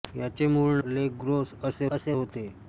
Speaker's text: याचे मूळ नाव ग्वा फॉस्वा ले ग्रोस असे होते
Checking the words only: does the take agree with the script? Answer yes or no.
no